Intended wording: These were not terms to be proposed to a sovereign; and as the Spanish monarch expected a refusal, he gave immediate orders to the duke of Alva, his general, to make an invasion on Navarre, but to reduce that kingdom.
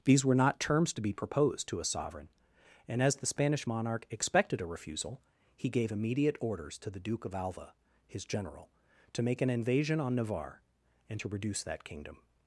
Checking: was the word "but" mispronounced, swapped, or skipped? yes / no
yes